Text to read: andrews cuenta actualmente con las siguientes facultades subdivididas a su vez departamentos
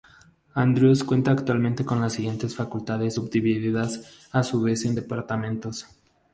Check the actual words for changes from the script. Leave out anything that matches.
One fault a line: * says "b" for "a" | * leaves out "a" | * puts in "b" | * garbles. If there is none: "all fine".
* puts in "en"